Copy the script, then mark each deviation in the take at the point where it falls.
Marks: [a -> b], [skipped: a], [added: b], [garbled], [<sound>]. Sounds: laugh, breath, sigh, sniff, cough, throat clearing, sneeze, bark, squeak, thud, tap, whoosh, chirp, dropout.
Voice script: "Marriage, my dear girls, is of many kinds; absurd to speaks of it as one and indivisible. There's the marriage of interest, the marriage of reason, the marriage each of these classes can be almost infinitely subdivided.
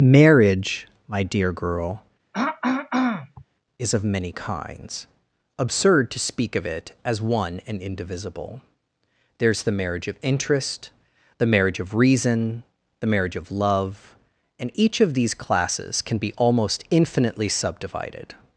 "Marriage, my dear [girls, -> girl] [throat clearing] is of many kinds; absurd to [speaks -> speak] of it as one and indivisible. There's the marriage of interest, the marriage of reason, the marriage [added: of love and] each of these classes can be almost infinitely subdivided.